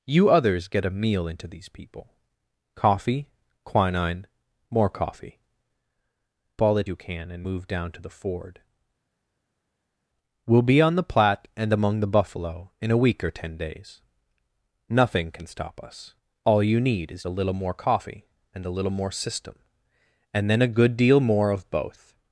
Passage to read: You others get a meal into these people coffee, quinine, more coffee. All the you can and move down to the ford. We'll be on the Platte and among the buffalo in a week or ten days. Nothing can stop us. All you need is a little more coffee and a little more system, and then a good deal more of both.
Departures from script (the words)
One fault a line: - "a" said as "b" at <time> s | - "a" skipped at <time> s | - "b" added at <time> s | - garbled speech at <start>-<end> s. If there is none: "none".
none